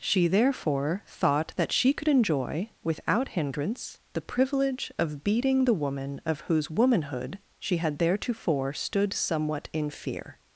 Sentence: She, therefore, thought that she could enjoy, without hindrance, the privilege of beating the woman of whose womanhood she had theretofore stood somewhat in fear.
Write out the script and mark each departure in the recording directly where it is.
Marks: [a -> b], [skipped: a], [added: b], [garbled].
She, therefore, thought that she could enjoy, without hindrance, the privilege of beating the woman of whose womanhood she had theretofore stood somewhat in fear.